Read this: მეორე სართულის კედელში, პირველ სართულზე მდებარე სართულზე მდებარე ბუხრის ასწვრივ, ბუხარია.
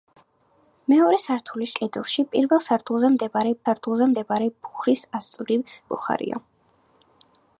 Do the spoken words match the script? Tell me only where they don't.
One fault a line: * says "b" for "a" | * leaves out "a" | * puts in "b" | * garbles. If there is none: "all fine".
all fine